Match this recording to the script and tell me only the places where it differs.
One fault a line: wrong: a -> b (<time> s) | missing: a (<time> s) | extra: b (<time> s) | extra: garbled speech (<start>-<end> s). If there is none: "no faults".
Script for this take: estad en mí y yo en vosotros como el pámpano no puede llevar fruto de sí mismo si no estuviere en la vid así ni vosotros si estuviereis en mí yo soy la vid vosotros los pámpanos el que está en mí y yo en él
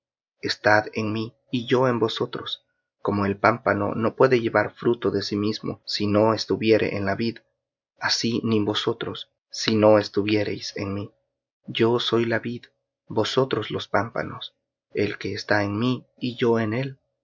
extra: no (9.8 s)